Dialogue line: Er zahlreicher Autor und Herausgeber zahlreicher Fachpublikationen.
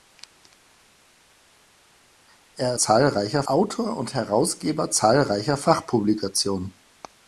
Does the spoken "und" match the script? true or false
true